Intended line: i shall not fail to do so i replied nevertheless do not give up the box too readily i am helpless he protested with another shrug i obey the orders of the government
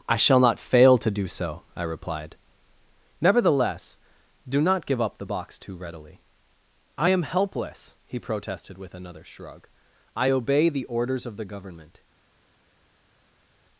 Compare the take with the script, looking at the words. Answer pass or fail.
pass